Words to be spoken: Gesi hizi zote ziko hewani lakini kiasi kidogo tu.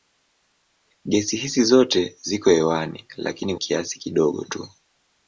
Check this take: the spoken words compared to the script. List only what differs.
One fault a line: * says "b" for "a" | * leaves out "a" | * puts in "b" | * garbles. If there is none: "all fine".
all fine